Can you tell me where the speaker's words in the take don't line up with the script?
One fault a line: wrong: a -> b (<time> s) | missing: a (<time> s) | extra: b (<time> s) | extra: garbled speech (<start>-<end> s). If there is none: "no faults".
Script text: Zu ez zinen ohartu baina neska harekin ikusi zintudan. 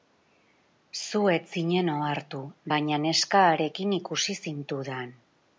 no faults